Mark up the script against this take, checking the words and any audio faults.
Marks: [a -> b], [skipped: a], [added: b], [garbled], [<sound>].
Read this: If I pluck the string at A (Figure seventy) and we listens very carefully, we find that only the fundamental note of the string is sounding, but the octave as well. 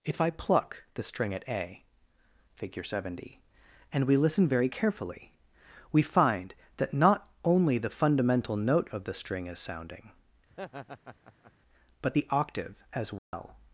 If I pluck the string at A (Figure seventy) and we [listens -> listen] very carefully, we find that [added: not] only the fundamental note of the string is sounding, [laugh] but the octave as well. [dropout]